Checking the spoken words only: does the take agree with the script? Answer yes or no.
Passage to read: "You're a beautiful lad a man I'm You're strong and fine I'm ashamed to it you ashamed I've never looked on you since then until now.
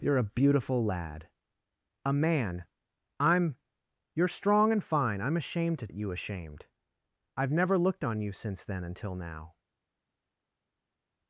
yes